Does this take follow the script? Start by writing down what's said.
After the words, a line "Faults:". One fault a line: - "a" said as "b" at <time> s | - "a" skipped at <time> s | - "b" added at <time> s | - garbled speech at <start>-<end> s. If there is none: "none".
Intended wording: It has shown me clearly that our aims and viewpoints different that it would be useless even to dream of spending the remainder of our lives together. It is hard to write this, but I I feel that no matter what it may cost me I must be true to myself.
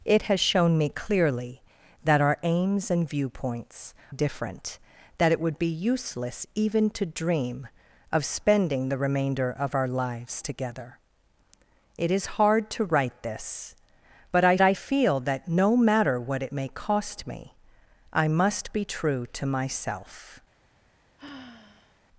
It has shown me clearly that our aims and viewpoints different that it would be useless even to dream of spending the remainder of our lives together. It is hard to write this, but I I feel that no matter what it may cost me I must be true to myself.
Faults:
none